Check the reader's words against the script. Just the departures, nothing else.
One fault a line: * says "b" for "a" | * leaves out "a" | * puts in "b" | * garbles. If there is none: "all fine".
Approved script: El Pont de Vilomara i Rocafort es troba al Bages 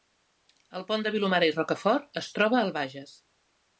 all fine